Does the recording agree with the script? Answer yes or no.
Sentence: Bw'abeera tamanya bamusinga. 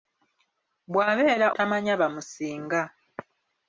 yes